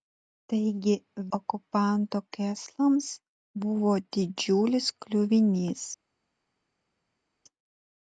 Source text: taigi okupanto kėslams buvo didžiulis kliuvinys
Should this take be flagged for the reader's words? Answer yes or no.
no